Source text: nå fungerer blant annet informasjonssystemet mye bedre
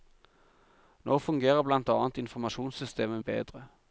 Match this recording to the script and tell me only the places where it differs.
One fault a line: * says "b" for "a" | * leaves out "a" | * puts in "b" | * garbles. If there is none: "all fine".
* leaves out "mye"